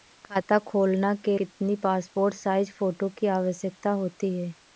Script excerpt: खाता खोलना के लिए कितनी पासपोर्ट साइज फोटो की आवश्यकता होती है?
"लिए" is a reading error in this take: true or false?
true